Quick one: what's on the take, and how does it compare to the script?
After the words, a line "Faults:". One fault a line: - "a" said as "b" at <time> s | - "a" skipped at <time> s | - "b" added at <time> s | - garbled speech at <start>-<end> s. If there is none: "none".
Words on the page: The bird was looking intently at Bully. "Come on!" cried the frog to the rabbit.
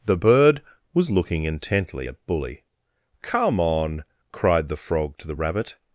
The bird was looking intently at Bully. "Come on!" cried the frog to the rabbit.
Faults:
none